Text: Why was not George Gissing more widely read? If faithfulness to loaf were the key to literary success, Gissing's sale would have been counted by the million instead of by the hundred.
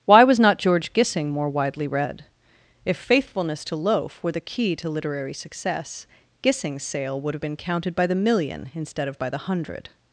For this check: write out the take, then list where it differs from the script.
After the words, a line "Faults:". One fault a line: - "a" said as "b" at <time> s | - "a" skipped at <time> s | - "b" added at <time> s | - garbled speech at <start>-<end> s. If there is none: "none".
Why was not George Gissing more widely read? If faithfulness to loaf were the key to literary success, Gissing's sale would have been counted by the million instead of by the hundred.
Faults:
none